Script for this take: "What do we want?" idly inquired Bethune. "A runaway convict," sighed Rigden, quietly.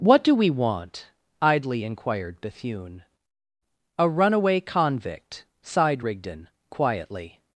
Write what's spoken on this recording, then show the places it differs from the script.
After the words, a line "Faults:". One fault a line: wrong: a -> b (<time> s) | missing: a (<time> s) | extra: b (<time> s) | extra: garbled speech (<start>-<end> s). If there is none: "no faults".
"What do we want?" idly inquired Bethune. "A runaway convict," sighed Rigden, quietly.
Faults:
no faults